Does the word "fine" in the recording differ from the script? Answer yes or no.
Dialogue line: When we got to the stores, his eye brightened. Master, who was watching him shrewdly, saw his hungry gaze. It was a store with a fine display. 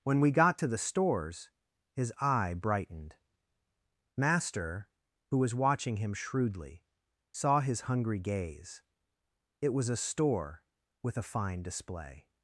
no